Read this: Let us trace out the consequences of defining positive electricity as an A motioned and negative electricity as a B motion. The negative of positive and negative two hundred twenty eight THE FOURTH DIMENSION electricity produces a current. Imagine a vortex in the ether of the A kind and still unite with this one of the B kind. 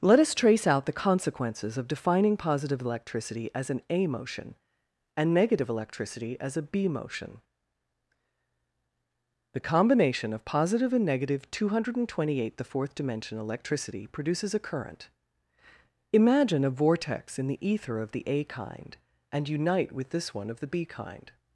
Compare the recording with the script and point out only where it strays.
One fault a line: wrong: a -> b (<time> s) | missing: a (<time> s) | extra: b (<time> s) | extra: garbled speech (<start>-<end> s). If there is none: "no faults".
wrong: motioned -> motion (4.1 s)
wrong: negative -> combination (9.6 s)
missing: still (19.5 s)